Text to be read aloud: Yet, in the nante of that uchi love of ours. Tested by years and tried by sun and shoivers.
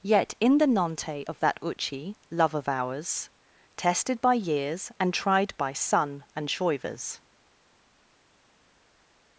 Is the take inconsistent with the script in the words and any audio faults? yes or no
no